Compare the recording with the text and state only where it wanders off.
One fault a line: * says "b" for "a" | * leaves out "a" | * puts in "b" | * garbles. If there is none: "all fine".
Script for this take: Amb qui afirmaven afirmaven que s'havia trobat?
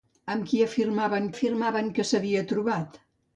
all fine